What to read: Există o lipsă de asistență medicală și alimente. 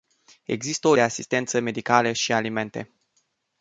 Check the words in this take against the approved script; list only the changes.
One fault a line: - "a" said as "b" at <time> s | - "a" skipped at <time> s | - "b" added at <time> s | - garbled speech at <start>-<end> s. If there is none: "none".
- "lipsă" skipped at 0.9 s